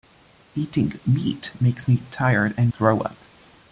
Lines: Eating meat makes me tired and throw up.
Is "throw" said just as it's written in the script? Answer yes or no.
yes